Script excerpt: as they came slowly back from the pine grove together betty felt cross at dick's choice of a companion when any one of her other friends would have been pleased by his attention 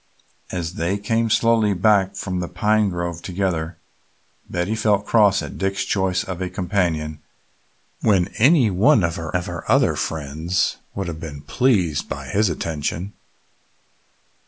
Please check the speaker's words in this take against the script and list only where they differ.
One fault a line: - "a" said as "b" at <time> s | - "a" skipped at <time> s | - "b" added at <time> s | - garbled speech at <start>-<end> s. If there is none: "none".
- "of her" added at 9.3 s